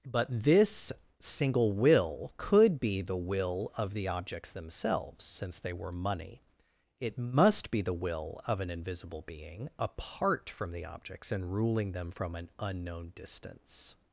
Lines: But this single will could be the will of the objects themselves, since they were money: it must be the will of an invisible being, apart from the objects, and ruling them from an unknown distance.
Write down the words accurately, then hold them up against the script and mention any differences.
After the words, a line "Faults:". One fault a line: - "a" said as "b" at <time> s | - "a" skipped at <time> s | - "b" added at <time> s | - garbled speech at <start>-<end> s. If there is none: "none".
But this single will could be the will of the objects themselves, since they were money: it must be the will of an invisible being, apart from the objects, and ruling them from an unknown distance.
Faults:
none